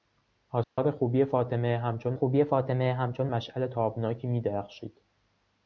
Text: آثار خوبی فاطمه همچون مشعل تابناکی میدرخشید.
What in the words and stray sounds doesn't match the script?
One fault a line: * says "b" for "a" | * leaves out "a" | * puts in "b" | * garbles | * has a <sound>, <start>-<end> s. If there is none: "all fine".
* has a dropout, 0.6-0.8 s
* puts in "خوبی فاطمه همچون"